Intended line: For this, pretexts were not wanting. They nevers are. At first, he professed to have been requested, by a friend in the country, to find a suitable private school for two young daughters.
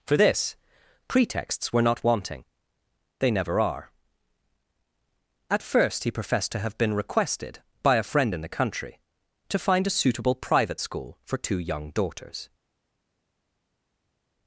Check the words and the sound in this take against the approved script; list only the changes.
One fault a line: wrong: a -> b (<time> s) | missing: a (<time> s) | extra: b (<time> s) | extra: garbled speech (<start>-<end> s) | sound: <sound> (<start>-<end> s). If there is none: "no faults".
wrong: nevers -> never (3.3 s)